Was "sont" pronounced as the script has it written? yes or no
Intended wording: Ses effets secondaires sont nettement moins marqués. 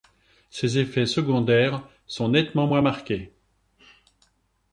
yes